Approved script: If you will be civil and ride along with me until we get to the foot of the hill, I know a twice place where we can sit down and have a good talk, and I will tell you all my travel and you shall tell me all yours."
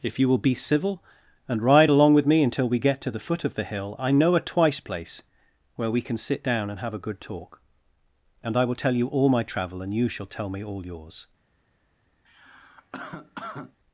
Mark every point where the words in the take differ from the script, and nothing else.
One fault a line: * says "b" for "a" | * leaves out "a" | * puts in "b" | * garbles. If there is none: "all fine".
all fine